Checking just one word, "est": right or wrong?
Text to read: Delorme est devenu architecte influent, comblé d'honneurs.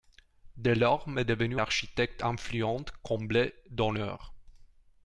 right